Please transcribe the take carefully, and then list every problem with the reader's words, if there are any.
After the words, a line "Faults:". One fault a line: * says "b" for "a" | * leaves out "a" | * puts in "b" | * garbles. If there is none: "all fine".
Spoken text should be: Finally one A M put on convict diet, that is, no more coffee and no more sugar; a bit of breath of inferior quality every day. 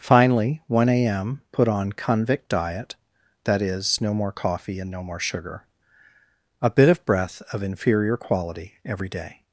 Finally one A M put on convict diet, that is, no more coffee and no more sugar; a bit of breath of inferior quality every day.
Faults:
all fine